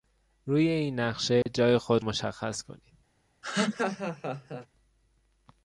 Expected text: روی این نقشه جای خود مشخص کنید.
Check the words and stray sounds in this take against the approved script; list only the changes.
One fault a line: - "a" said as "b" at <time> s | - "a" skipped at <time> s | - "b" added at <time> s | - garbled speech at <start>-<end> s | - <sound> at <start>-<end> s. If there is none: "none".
- dropout at 1.4-1.5 s
- laugh at 3.4-4.7 s